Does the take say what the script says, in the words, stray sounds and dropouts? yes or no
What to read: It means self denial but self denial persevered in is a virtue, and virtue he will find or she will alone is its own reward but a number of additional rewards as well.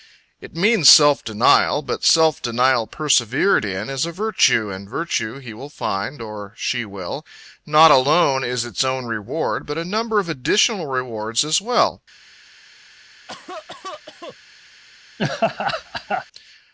no